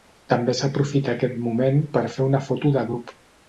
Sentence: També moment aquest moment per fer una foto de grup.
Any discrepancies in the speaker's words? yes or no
yes